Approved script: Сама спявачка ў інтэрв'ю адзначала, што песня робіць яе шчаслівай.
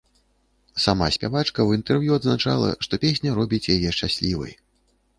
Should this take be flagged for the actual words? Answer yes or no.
no